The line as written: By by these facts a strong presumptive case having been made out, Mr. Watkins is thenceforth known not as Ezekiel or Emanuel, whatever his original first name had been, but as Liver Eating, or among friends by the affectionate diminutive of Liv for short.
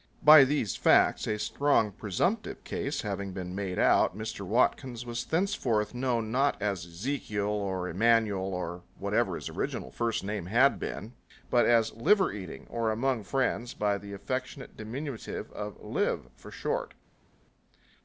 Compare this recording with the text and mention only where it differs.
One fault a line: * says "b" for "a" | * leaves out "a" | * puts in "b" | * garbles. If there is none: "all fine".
* leaves out "by"
* says "was" for "is"
* puts in "or"